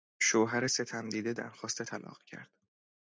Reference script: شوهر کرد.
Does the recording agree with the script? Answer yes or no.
no